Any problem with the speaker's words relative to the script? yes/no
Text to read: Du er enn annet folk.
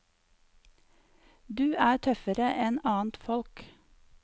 yes